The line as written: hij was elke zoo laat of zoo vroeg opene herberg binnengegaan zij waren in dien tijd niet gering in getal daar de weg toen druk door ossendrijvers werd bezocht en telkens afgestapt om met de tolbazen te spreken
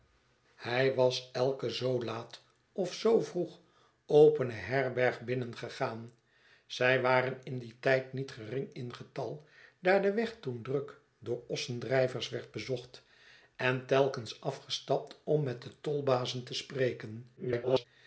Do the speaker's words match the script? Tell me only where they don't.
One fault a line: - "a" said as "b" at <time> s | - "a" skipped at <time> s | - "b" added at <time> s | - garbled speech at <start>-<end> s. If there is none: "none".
- garbled speech at 17.4-17.9 s